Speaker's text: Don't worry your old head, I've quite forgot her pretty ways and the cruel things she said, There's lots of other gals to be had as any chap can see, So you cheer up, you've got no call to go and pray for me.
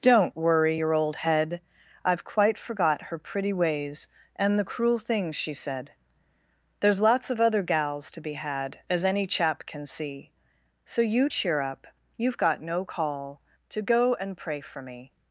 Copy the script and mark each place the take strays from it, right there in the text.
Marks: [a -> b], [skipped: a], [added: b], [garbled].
Don't worry your old head, I've quite forgot her pretty ways and the cruel things she said, There's lots of other gals to be had as any chap can see, So you cheer up, you've got no call to go and pray for me.